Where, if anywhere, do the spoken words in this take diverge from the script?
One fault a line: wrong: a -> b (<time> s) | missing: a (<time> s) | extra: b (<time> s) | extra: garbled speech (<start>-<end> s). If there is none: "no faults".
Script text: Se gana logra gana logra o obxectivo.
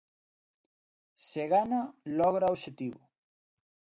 missing: gana logra (2.5 s)